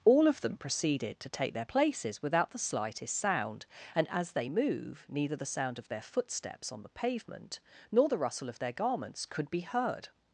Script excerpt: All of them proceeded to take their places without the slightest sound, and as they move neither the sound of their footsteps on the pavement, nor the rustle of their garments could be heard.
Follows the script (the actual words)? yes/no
yes